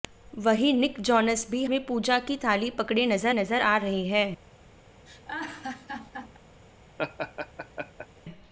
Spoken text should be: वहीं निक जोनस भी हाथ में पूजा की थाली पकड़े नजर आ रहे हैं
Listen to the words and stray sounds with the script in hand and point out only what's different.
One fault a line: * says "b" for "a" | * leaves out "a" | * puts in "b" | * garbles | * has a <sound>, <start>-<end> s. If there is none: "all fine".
* leaves out "हाथ"
* puts in "नजर"
* has a laugh, 5.1-6.4 s
* has a laugh, 7.0-8.1 s